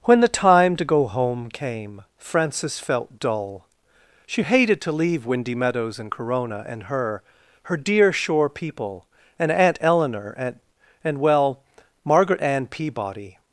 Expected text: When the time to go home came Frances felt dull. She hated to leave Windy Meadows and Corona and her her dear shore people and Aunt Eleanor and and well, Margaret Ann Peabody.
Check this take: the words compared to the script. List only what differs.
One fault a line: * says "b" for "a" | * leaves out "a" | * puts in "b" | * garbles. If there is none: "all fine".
all fine